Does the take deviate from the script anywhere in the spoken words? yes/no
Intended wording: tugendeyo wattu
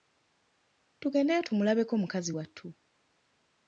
yes